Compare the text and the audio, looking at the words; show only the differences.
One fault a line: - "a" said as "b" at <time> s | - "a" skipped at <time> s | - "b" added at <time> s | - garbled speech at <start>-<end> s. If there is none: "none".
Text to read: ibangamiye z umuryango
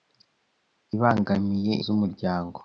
none